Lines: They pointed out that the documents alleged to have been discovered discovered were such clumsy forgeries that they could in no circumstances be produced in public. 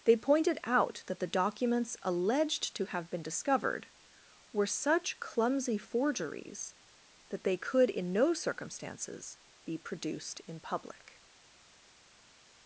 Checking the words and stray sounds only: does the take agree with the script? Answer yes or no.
no